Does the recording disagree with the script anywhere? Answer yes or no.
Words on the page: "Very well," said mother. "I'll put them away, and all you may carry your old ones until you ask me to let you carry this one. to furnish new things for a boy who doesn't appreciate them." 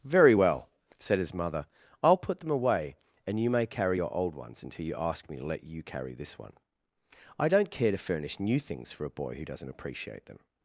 yes